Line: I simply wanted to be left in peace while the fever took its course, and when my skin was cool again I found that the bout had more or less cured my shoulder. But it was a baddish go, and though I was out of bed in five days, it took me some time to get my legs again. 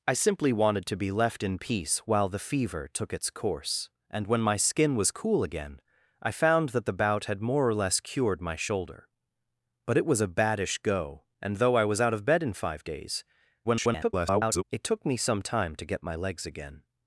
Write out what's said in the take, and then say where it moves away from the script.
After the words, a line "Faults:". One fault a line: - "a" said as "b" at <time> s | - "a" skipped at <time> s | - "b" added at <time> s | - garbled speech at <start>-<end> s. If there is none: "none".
I simply wanted to be left in peace while the fever took its course, and when my skin was cool again I found that the bout had more or less cured my shoulder. But it was a baddish go, and though I was out of bed in five days, [garbled] it took me some time to get my legs again.
Faults:
- garbled speech at 13.6-14.6 s